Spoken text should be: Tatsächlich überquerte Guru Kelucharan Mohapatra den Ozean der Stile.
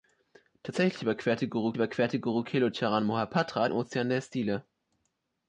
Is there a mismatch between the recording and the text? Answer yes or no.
yes